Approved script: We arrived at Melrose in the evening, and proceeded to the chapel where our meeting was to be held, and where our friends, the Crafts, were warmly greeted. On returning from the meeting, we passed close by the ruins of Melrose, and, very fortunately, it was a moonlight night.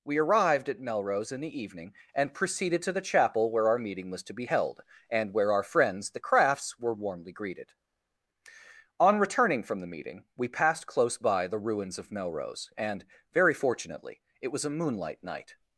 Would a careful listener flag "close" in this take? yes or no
no